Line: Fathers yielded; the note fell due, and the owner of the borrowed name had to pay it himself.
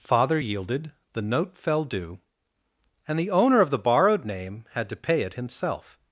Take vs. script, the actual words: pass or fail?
fail